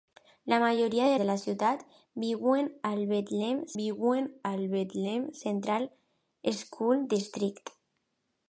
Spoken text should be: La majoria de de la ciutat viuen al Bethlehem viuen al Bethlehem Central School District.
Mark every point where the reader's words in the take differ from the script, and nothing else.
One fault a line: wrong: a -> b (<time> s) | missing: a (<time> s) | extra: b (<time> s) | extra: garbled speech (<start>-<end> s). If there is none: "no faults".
no faults